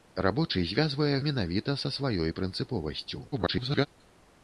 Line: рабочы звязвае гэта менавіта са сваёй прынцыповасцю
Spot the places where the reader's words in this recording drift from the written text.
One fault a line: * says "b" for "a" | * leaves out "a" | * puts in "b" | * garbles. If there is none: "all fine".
* leaves out "гэта"
* garbles